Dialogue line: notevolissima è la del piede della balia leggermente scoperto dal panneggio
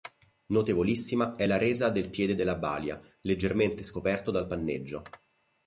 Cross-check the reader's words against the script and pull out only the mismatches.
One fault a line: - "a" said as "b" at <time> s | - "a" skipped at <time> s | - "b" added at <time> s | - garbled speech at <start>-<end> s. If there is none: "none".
- "resa" added at 1.6 s